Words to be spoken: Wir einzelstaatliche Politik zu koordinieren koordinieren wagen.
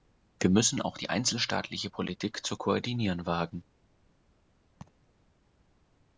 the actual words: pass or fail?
fail